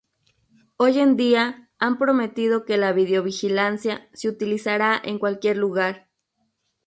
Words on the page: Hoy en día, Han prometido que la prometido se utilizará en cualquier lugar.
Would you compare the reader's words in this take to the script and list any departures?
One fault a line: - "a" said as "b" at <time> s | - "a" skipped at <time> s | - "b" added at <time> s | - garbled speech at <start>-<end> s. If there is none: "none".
- "prometido" said as "videovigilancia" at 2.9 s